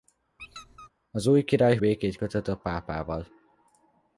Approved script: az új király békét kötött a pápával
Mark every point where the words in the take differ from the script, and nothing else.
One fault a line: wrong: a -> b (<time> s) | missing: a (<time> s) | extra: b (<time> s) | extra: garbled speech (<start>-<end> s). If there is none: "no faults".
no faults